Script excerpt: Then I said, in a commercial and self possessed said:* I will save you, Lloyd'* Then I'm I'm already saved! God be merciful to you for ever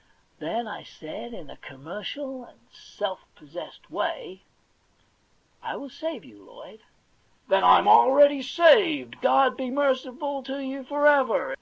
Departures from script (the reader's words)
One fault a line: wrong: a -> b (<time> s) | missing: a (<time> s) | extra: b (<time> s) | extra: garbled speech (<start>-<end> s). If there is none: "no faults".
wrong: said -> way (3.9 s)
missing: I'm (7.9 s)